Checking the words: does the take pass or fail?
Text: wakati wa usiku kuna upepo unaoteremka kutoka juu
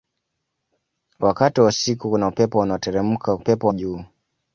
fail